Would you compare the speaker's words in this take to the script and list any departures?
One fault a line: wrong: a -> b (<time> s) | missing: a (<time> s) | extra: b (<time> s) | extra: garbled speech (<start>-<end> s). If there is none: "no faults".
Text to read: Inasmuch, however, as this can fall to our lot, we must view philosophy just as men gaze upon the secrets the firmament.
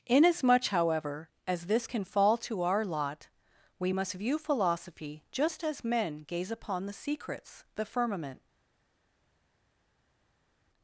no faults